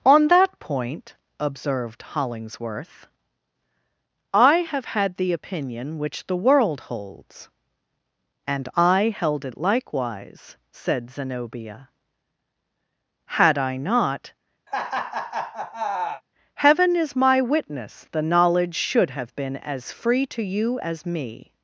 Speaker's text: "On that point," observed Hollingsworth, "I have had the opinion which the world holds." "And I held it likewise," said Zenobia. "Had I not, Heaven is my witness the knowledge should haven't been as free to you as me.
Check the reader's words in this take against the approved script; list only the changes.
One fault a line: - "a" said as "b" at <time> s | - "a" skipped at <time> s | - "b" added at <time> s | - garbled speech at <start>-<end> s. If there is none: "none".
- "haven't" said as "have" at 19.1 s